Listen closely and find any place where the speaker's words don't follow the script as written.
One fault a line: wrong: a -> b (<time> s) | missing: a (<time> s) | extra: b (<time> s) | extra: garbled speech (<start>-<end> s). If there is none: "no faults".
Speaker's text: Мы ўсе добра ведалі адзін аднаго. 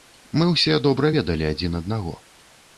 no faults